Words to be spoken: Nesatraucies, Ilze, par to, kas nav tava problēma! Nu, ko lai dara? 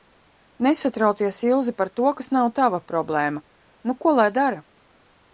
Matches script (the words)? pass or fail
pass